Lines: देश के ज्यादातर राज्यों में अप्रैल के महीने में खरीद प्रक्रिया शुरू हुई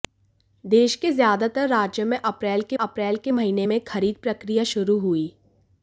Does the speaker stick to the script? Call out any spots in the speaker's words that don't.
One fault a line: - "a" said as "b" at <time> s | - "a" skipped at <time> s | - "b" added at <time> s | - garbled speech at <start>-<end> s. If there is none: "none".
- "अप्रैल के" added at 2.7 s